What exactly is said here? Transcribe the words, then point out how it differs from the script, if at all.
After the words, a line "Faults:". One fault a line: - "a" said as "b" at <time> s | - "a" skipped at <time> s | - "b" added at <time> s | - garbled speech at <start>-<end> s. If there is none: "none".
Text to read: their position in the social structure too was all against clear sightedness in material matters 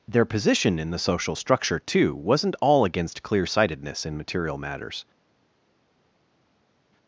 their position in the social structure too wasn't all against clear sightedness in material matters
Faults:
- "was" said as "wasn't" at 2.1 s